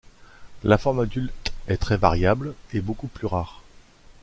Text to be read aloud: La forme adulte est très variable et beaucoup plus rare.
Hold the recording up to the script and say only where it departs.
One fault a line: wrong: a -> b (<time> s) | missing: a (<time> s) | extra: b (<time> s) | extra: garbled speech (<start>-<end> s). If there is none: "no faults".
no faults